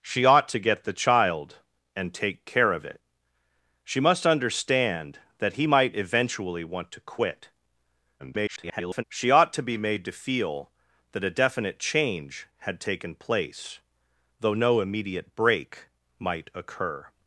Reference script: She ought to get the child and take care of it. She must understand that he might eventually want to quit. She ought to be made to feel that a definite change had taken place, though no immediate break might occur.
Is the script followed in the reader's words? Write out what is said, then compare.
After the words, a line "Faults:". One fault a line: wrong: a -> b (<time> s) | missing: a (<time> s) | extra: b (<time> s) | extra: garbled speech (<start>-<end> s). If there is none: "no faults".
She ought to get the child and take care of it. She must understand that he might eventually want to quit. [garbled] She ought to be made to feel that a definite change had taken place, though no immediate break might occur.
Faults:
extra: garbled speech (8.2-9.0 s)